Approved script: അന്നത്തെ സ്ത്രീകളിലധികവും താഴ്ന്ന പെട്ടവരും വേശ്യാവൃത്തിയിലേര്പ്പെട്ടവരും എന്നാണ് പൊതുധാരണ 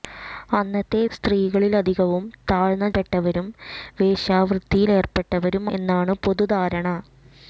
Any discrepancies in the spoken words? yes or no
no